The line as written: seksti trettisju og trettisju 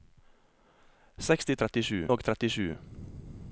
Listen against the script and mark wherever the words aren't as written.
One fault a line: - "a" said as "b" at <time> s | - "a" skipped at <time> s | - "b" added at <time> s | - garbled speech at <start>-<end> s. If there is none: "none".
none